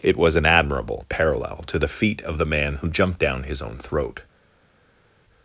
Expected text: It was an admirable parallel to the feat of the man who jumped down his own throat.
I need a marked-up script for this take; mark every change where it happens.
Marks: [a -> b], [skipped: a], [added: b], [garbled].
It was an admirable parallel to the feat of the man who jumped down his own throat.